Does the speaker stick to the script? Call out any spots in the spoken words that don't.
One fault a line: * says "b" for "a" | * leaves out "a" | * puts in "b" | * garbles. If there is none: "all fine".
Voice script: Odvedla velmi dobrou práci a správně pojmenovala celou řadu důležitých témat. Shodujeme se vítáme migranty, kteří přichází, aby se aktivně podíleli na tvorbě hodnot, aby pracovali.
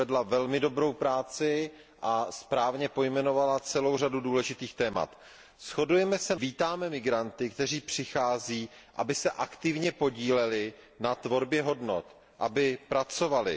all fine